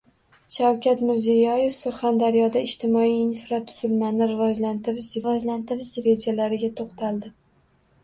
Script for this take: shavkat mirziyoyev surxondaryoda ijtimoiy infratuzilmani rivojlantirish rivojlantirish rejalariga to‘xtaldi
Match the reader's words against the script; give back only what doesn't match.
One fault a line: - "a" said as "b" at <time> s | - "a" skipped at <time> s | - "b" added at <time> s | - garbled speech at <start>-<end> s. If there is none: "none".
none